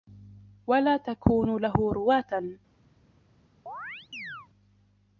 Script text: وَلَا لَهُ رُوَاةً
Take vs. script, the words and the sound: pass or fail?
fail